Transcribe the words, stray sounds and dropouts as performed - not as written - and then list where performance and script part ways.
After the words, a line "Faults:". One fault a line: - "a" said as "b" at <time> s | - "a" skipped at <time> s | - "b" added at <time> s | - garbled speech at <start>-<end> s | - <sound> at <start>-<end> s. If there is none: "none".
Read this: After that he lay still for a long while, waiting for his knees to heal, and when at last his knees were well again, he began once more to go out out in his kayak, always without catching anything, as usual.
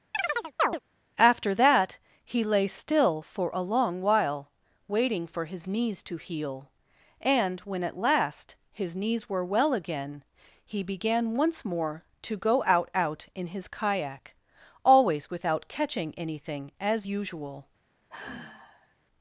After that he lay still for a long while, waiting for his knees to heal, and when at last his knees were well again, he began once more to go out out in his kayak, always without catching anything, as usual.
Faults:
- chirp at 0.1-0.8 s
- sigh at 18.1-18.9 s